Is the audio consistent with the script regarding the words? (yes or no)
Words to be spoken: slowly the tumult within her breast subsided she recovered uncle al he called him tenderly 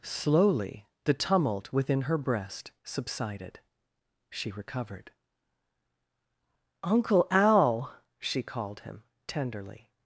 no